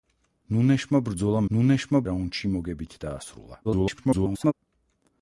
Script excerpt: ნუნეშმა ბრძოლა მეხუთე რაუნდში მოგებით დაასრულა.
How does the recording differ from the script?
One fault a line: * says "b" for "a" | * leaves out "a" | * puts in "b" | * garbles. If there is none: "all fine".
* says "ნუნეშმა" for "მეხუთე"
* garbles